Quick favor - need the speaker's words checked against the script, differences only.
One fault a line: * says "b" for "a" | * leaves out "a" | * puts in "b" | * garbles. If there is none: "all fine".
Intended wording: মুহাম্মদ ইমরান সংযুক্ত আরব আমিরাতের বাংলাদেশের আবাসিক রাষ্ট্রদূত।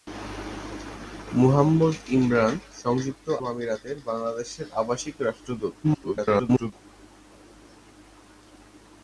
* leaves out "আরব"
* garbles